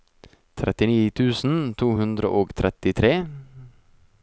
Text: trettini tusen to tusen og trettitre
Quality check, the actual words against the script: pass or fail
fail